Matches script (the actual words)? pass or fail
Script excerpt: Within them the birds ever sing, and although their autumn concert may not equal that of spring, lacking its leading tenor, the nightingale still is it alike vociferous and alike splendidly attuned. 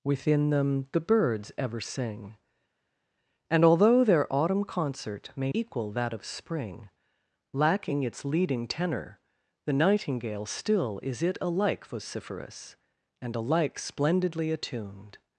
fail